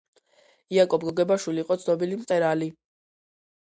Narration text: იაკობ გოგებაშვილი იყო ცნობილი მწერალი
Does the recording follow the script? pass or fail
pass